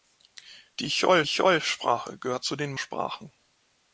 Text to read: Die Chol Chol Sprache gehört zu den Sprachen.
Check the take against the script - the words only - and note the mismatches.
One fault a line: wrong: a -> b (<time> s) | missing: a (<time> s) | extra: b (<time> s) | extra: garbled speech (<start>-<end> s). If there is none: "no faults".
no faults